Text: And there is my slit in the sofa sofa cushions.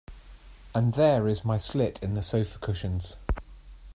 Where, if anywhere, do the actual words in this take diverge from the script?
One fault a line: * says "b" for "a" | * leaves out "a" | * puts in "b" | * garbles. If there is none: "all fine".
* leaves out "sofa"